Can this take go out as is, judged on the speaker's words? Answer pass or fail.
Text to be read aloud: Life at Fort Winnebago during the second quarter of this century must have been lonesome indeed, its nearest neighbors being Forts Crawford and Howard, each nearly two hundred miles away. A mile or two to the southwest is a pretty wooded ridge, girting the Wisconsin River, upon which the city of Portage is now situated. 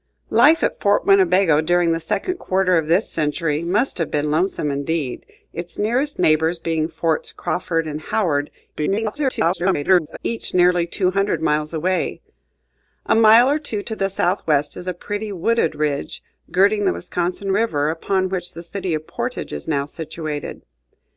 fail